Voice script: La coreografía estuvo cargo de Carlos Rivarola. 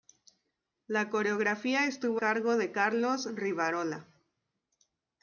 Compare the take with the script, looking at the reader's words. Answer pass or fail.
pass